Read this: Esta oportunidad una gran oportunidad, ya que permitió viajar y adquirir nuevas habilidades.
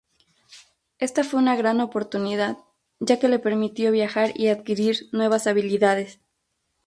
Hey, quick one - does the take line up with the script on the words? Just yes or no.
no